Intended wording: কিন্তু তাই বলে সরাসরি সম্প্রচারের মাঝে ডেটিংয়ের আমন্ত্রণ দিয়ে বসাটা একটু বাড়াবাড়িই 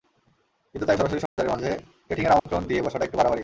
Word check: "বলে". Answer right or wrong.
wrong